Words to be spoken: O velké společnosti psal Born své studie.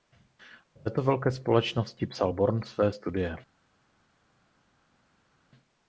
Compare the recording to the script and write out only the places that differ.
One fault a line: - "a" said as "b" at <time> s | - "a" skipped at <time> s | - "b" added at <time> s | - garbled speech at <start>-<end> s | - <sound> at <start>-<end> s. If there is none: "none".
- "této" added at 0.8 s